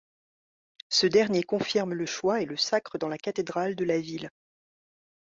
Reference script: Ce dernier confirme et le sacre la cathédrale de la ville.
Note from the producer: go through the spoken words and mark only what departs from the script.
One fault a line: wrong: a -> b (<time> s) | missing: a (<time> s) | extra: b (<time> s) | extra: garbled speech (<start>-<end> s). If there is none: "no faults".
extra: le choix (1.9 s)
extra: dans (3.0 s)